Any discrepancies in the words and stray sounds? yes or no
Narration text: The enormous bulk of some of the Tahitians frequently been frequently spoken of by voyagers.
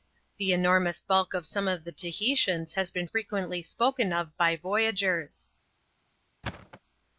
yes